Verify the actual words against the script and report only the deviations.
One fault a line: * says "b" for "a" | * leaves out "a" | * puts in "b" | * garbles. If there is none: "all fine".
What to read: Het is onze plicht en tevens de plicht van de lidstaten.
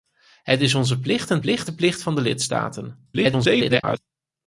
* says "plicht" for "tevens"
* garbles